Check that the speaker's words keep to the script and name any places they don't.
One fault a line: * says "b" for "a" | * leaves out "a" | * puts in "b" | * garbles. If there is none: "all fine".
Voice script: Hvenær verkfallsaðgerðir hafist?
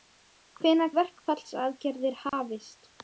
all fine